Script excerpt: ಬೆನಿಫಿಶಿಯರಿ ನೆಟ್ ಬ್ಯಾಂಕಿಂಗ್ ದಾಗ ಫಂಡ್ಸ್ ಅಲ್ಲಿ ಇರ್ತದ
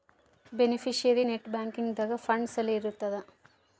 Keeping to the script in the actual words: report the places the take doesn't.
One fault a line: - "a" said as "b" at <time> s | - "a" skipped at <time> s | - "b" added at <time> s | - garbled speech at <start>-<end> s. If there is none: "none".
none